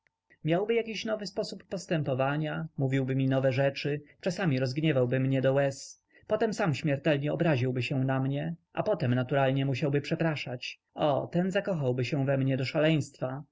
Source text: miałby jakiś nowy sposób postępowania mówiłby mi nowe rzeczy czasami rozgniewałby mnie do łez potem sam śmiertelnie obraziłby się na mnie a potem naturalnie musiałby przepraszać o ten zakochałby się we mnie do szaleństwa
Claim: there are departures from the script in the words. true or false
false